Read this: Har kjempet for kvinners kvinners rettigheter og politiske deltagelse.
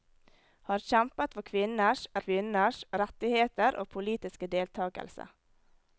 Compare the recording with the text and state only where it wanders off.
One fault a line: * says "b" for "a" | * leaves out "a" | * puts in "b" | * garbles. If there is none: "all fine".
all fine